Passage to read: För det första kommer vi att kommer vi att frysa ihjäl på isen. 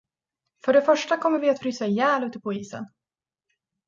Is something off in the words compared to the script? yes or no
yes